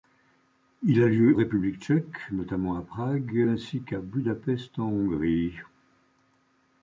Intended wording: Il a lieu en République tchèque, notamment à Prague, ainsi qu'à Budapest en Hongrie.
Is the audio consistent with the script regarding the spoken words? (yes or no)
no